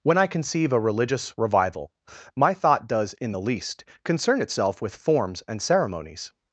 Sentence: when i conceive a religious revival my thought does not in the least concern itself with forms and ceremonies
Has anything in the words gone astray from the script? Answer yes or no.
yes